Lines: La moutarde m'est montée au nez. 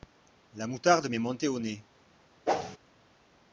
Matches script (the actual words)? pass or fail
pass